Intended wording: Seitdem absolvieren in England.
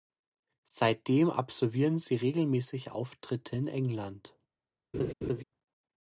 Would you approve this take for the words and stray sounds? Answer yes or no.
no